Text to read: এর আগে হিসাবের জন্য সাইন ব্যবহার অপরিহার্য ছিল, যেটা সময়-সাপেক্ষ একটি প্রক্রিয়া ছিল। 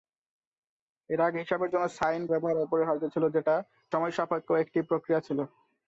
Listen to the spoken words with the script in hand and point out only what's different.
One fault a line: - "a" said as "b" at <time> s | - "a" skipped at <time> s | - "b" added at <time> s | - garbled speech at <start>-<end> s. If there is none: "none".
none